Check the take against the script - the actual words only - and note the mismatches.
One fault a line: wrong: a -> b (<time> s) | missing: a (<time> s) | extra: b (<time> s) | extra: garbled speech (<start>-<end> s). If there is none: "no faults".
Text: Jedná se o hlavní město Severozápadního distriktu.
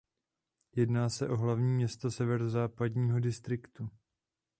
no faults